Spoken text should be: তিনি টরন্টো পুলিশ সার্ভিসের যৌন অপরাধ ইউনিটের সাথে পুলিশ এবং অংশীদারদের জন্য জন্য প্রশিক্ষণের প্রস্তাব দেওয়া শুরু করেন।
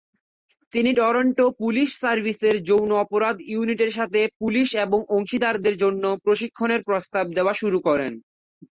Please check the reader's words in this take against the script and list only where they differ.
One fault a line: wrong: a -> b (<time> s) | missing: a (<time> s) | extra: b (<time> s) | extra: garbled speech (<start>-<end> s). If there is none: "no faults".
missing: জন্য (6.0 s)